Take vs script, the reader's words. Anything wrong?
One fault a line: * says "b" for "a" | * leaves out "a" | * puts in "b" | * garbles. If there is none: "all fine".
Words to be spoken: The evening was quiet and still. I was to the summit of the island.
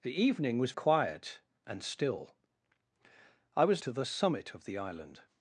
all fine